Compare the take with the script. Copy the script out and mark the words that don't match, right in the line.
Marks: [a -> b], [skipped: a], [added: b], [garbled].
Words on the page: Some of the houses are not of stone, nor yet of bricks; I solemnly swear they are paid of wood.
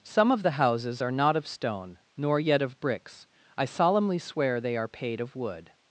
Some of the houses are not of stone, nor yet of bricks; I solemnly swear they are paid of wood.